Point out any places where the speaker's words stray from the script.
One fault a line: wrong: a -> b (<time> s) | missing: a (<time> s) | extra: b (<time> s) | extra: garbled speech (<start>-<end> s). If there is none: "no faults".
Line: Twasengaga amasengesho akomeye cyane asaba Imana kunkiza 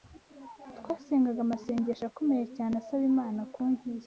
no faults